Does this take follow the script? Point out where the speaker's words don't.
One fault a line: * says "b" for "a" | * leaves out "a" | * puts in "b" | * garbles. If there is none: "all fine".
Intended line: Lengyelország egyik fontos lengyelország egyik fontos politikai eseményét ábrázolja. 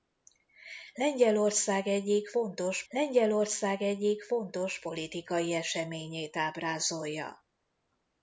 all fine